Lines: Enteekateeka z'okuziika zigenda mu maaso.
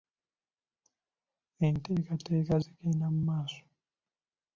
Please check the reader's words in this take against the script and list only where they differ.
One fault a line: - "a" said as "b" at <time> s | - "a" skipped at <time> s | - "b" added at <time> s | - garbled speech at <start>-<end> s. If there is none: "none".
- "z'okuziika" skipped at 2.5 s